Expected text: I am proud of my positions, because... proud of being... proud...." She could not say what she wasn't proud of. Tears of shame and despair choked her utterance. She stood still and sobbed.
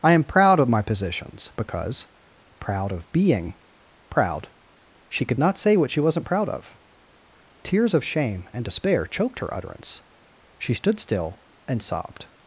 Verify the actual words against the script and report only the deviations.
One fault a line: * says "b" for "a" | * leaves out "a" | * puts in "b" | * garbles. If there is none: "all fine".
all fine